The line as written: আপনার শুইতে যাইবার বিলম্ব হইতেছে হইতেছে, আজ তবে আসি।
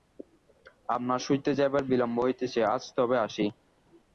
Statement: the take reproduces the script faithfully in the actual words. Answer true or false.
false